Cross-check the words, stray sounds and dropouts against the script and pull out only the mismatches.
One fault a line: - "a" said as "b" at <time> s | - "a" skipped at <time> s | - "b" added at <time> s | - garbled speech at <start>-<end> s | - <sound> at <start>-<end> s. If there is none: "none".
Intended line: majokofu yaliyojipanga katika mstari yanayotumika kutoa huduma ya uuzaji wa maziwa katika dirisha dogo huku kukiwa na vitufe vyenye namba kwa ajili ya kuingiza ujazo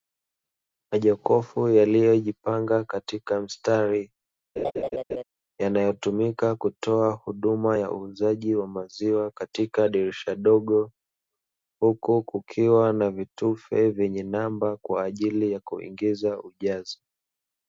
- laugh at 4.6-5.2 s